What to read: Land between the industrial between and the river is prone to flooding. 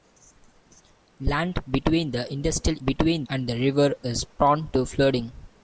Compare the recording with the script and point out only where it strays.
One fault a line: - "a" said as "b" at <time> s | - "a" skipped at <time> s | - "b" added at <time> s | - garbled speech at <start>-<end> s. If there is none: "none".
none